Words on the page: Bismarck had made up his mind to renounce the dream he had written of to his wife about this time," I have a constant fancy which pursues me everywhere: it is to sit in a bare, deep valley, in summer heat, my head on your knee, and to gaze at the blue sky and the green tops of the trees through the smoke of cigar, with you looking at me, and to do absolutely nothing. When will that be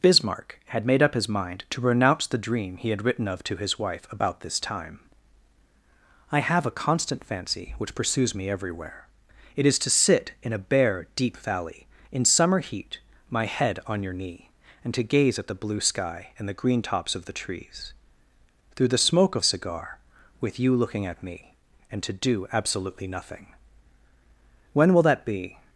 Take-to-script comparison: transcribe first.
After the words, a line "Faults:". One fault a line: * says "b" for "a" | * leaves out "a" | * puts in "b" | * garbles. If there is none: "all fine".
Bismarck had made up his mind to renounce the dream he had written of to his wife about this time," I have a constant fancy which pursues me everywhere: it is to sit in a bare, deep valley, in summer heat, my head on your knee, and to gaze at the blue sky and the green tops of the trees through the smoke of cigar, with you looking at me, and to do absolutely nothing. When will that be
Faults:
all fine